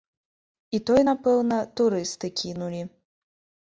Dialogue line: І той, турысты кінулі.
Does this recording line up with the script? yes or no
no